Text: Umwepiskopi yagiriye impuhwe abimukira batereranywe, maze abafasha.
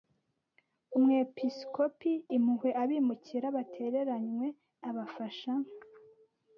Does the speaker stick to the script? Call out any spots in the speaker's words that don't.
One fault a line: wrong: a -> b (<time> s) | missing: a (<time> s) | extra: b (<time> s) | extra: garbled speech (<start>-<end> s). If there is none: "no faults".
missing: yagiriye (2.1 s)
missing: maze (4.5 s)